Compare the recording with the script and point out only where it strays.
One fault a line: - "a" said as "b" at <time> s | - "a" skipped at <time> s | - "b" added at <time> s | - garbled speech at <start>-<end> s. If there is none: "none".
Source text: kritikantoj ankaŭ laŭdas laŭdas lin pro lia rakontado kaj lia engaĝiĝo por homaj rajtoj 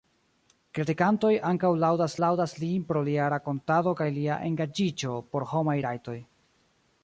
none